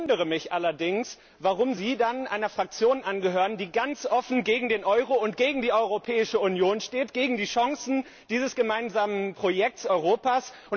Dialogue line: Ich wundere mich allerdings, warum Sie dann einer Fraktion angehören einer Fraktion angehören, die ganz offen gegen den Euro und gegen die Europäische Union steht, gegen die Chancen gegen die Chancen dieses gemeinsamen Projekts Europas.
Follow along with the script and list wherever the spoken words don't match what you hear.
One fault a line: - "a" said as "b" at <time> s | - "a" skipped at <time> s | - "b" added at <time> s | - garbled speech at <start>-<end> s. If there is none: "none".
- "einer Fraktion angehören" skipped at 3.6 s
- "gegen die Chancen" skipped at 8.1 s